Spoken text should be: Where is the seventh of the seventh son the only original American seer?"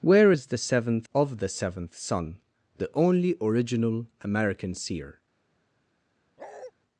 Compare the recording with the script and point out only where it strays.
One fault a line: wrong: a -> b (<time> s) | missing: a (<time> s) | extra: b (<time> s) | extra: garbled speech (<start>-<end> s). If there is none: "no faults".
no faults